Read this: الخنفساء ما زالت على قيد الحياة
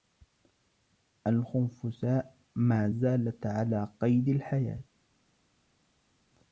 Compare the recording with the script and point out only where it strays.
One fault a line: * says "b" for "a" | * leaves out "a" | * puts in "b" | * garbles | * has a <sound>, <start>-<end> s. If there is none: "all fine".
all fine